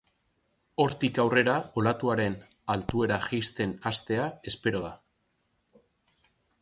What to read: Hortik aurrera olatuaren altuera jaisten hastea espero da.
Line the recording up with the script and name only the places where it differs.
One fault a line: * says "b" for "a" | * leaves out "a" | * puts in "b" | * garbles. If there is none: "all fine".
all fine